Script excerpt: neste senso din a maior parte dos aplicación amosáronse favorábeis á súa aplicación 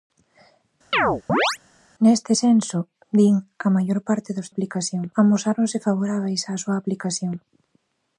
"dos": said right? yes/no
yes